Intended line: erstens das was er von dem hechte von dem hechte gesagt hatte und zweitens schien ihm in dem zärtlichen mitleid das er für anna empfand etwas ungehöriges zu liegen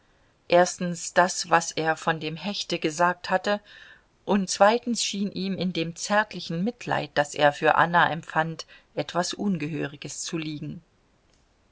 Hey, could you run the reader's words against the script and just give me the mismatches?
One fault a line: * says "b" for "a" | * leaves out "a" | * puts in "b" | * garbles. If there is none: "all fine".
* leaves out "von dem hechte"